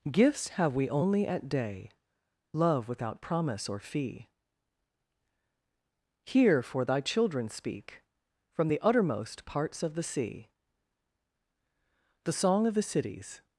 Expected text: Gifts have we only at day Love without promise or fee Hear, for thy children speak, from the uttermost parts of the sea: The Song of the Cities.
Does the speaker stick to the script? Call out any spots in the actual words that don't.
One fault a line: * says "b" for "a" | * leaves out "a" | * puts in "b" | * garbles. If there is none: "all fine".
all fine